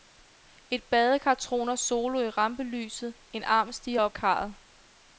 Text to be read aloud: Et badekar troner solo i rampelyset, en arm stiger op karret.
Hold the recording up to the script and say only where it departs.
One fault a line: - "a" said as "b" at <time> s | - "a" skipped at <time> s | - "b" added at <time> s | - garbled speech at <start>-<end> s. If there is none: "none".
none